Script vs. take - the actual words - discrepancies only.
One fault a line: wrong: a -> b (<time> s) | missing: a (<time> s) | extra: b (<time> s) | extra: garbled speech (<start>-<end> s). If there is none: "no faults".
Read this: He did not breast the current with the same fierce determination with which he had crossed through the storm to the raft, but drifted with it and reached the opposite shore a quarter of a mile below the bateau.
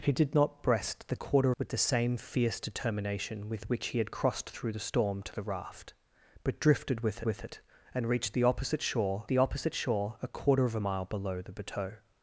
wrong: current -> quarter (1.1 s)
extra: with (7.2 s)
extra: the opposite shore (9.3 s)